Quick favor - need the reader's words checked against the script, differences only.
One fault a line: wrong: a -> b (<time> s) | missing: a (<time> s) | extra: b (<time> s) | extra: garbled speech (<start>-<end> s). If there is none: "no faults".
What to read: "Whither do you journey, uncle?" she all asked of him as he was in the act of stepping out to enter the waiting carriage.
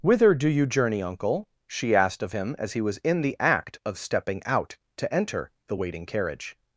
missing: all (1.9 s)